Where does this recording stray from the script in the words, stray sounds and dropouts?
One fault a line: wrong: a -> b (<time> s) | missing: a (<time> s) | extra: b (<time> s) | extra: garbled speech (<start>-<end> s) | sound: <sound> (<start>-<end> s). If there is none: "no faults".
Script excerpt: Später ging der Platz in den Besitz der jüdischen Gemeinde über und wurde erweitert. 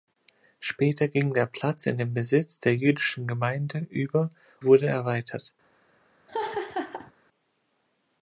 missing: und (4.3 s)
sound: laugh (6.3-7.1 s)